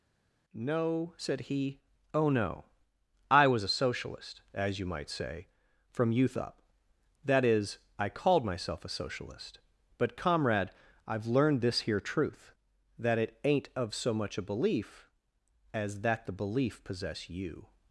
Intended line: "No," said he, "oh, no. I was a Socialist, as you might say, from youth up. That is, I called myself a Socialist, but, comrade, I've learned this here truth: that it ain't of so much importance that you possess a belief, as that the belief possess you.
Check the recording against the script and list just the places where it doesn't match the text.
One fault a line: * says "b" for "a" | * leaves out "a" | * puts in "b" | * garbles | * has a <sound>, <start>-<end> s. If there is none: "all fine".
* leaves out "importance that you possess"